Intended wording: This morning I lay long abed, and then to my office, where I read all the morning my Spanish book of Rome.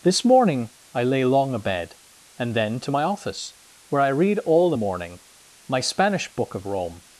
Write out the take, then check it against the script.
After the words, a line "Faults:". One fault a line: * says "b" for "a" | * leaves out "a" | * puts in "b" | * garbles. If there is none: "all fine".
This morning I lay long abed, and then to my office, where I read all the morning my Spanish book of Rome.
Faults:
all fine